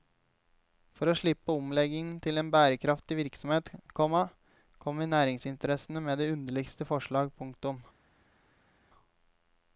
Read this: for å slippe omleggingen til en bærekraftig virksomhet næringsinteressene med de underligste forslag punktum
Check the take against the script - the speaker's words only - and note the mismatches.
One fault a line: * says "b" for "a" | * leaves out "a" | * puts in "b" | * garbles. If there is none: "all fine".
* puts in "komma kommer"